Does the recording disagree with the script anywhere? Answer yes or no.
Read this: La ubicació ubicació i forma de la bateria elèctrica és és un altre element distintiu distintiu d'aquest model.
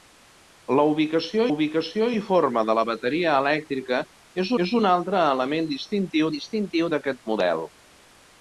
no